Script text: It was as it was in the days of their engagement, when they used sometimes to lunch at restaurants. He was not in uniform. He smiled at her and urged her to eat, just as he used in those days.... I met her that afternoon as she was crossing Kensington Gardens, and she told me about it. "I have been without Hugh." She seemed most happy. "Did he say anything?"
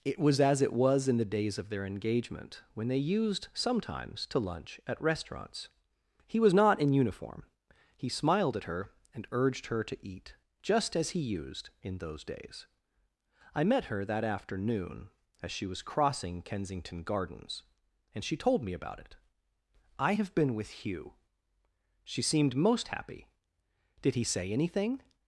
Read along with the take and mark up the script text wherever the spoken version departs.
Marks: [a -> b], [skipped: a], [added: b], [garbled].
It was as it was in the days of their engagement, when they used sometimes to lunch at restaurants. He was not in uniform. He smiled at her and urged her to eat, just as he used in those days.... I met her that afternoon as she was crossing Kensington Gardens, and she told me about it. "I have been [without -> with] Hugh." She seemed most happy. "Did he say anything?"